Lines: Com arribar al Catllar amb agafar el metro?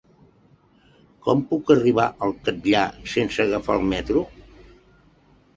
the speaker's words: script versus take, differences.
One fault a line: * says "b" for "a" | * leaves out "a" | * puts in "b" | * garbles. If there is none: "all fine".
* puts in "puc"
* says "sense" for "amb"